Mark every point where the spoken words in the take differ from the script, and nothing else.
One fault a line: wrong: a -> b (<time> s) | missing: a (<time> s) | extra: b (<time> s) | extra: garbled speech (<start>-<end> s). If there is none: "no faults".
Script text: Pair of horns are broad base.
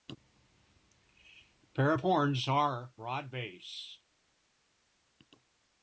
no faults